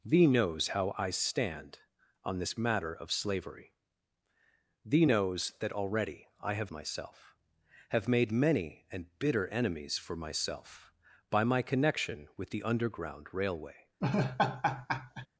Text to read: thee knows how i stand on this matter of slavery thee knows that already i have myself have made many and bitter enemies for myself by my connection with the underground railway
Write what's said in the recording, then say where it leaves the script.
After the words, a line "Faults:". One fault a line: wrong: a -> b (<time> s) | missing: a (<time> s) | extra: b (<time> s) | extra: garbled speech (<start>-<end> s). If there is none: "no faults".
thee knows how i stand on this matter of slavery thee knows that already i have myself have made many and bitter enemies for myself by my connection with the underground railway
Faults:
no faults